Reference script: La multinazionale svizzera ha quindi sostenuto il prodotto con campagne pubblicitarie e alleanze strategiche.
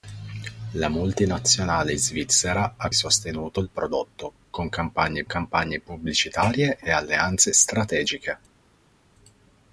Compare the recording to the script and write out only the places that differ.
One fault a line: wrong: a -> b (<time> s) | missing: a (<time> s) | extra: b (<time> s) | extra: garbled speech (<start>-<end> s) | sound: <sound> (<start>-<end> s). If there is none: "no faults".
missing: quindi (2.9 s)
extra: campagne (5.3 s)